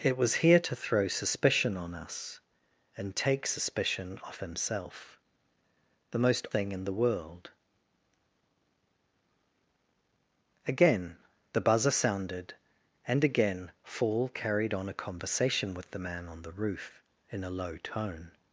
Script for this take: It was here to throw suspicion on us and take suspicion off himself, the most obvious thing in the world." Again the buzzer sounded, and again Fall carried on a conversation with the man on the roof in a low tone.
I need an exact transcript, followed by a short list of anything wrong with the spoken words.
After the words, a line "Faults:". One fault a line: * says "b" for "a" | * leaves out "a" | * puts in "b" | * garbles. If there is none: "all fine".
It was here to throw suspicion on us and take suspicion off himself, the most thing in the world." Again the buzzer sounded, and again Fall carried on a conversation with the man on the roof in a low tone.
Faults:
* leaves out "obvious"